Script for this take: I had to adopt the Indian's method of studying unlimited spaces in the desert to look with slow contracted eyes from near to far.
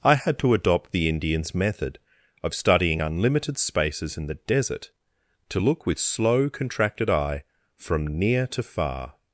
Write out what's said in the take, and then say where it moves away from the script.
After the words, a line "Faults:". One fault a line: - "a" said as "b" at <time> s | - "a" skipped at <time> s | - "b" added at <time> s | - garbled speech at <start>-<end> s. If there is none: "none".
I had to adopt the Indian's method of studying unlimited spaces in the desert to look with slow contracted eye from near to far.
Faults:
- "eyes" said as "eye" at 7.1 s